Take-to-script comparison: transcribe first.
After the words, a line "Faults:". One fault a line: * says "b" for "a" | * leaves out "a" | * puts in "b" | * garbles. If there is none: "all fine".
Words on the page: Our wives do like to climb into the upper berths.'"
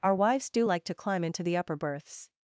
Our wives do like to climb into the upper berths.'"
Faults:
all fine